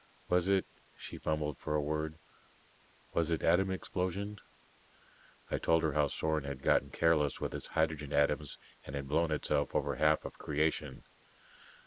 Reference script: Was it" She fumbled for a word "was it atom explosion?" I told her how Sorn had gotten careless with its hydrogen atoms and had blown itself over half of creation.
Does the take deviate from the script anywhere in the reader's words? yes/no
no